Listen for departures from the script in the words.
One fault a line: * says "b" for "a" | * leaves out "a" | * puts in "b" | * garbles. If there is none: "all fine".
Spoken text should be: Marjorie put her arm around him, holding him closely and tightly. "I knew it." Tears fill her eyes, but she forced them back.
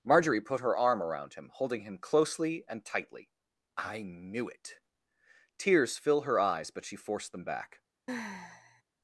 all fine